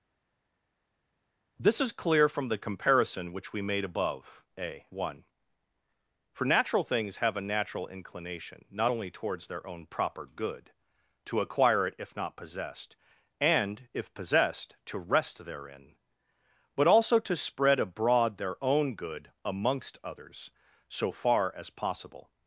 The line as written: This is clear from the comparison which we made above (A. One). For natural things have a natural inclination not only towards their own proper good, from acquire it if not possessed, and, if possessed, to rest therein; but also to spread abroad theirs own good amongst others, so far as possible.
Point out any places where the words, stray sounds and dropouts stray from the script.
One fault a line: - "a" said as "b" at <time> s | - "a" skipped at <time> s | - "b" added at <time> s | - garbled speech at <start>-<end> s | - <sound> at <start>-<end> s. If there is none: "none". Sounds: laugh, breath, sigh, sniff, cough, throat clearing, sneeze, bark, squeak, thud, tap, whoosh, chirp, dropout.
- "from" said as "to" at 11.3 s
- "theirs" said as "their" at 18.4 s